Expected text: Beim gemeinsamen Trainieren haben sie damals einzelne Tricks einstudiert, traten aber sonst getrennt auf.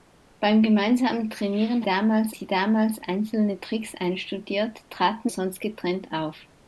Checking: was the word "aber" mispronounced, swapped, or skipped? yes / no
yes